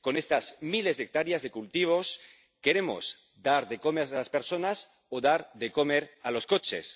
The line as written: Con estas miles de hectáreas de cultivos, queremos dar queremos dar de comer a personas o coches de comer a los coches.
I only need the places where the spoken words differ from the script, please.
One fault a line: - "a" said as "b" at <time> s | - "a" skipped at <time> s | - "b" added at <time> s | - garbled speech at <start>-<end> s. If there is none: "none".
- "queremos dar" skipped at 3.7 s
- "las" added at 4.2 s
- "coches" said as "dar" at 5.2 s